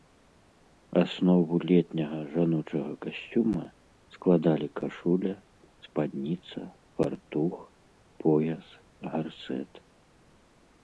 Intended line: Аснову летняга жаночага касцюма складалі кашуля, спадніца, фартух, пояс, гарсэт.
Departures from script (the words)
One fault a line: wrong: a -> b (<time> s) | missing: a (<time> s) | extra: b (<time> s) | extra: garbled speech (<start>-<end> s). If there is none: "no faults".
no faults